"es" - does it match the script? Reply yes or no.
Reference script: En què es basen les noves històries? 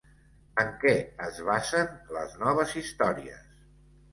yes